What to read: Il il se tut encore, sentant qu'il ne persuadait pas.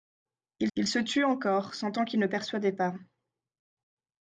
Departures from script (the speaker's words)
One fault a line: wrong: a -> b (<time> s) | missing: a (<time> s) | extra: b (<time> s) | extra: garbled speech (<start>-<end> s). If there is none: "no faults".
no faults